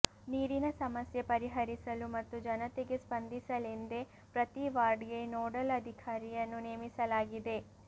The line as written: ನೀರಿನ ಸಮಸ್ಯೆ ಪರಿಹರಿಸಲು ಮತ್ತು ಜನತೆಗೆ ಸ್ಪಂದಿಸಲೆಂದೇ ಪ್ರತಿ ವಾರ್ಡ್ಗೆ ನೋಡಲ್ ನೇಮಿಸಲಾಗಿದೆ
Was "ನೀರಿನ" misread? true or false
false